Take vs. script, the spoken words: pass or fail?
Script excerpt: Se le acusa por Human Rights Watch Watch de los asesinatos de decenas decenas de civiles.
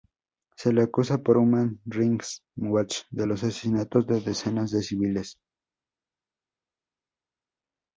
fail